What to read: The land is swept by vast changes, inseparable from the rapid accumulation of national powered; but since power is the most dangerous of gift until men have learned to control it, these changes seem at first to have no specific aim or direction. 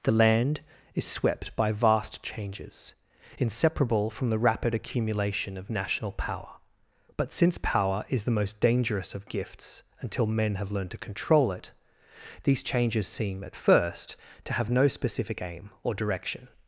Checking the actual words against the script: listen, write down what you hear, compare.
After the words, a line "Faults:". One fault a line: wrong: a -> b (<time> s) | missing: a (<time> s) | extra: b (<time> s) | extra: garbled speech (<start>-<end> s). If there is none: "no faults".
The land is swept by vast changes, inseparable from the rapid accumulation of national power; but since power is the most dangerous of gifts until men have learned to control it, these changes seem at first to have no specific aim or direction.
Faults:
wrong: powered -> power (6.1 s)
wrong: gift -> gifts (9.3 s)